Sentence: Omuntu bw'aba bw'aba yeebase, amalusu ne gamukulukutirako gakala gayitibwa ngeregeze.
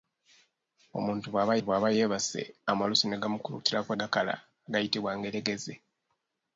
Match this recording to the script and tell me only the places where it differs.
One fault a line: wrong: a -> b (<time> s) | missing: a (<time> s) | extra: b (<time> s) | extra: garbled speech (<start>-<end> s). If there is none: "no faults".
no faults